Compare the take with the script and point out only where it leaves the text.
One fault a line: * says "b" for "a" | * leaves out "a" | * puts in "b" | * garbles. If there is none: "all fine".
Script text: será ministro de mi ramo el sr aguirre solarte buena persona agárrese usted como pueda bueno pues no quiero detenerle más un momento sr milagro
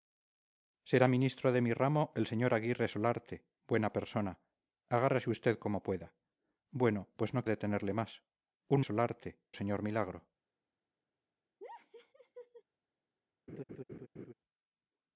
* leaves out "quiero"
* says "solarte" for "momento"